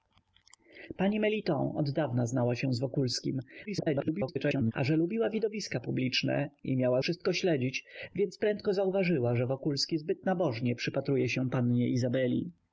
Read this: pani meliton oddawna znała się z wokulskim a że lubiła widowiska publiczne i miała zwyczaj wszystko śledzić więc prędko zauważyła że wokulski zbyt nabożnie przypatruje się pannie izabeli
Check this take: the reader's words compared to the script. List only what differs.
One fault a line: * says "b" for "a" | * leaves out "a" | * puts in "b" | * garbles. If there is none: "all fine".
* garbles
* leaves out "zwyczaj"